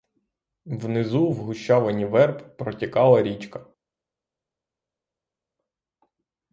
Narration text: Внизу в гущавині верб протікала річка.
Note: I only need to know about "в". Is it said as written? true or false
true